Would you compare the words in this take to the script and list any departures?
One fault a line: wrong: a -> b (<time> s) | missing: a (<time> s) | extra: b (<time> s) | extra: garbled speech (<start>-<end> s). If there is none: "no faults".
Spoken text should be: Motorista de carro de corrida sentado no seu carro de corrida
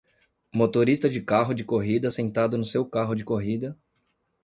no faults